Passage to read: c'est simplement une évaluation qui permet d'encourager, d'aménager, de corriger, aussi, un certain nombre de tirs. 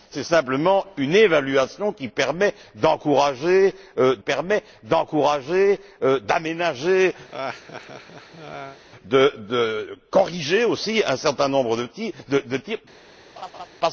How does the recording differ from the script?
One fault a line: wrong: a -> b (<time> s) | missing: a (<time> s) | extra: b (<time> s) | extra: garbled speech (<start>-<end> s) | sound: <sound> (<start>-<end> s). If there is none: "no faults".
extra: permet d'encourager (4.2 s)
sound: laugh (7.3-8.8 s)
sound: laugh (13.4-13.7 s)